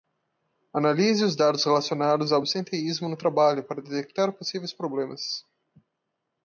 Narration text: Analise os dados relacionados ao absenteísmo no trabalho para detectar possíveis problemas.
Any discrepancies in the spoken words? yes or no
no